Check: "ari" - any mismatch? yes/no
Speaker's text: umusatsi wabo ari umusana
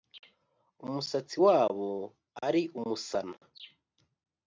no